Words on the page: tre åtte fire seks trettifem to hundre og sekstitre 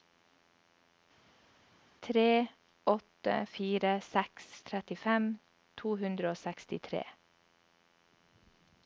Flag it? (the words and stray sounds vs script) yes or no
no